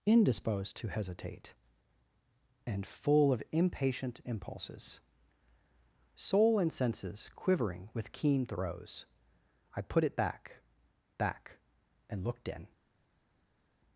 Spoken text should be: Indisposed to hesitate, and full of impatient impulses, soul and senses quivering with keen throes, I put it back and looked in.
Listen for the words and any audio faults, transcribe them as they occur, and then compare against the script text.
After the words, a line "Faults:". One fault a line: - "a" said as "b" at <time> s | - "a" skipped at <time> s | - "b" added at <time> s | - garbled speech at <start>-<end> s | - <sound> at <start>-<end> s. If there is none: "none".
Indisposed to hesitate, and full of impatient impulses, soul and senses quivering with keen throes, I put it back back and looked in.
Faults:
- "back" added at 11.2 s